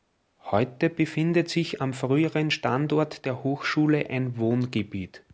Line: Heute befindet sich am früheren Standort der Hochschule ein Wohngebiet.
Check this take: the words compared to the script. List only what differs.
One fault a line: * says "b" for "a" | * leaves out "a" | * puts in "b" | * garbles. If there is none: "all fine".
all fine